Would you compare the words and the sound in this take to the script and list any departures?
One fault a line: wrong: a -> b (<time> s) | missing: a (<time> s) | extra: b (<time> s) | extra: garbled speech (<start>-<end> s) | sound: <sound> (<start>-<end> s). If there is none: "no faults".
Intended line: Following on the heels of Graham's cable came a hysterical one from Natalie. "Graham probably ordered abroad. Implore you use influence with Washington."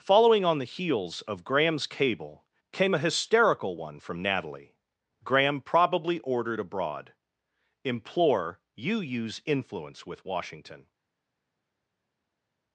no faults